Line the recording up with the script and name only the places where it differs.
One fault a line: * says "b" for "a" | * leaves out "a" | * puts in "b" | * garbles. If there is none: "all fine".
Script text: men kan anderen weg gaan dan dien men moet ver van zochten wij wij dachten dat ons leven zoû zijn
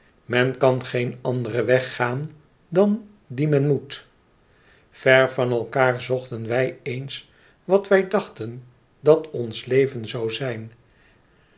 * puts in "geen"
* puts in "elkaâr"
* puts in "eens wat"